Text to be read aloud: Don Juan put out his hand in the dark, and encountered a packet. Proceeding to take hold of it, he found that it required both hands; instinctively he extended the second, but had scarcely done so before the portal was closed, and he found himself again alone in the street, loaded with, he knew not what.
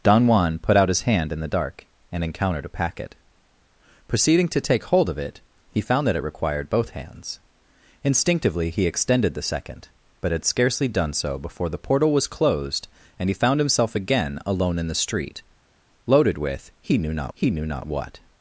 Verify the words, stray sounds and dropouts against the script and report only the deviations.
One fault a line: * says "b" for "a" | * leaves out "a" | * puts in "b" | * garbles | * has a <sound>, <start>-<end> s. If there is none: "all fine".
* puts in "he knew not"